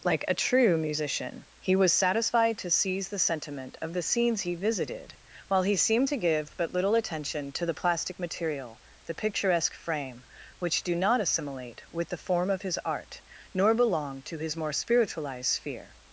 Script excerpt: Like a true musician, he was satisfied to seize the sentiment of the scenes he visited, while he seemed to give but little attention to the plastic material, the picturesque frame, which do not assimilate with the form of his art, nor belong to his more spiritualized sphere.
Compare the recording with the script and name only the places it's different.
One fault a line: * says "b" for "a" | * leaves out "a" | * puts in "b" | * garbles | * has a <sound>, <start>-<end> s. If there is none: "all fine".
all fine